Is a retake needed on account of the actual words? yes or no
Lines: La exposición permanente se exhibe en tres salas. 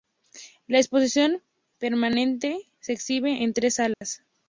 no